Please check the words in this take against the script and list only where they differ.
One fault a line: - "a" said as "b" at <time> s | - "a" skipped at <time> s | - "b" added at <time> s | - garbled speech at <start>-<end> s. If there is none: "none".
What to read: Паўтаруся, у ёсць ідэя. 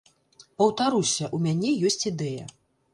- "мяне" added at 1.5 s